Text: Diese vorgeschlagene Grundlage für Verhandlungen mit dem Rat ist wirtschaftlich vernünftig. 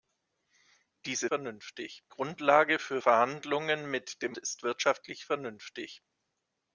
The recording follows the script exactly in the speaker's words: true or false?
false